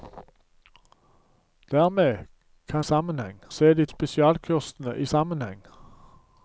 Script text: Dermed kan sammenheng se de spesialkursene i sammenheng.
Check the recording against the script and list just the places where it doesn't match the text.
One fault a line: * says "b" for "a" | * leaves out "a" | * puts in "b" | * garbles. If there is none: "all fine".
all fine